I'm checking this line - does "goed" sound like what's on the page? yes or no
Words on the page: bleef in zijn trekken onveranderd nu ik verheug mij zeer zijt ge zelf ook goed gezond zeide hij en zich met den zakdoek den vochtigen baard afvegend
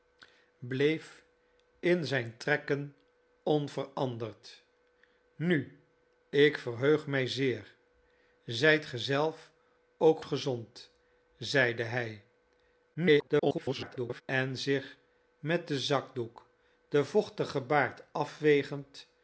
no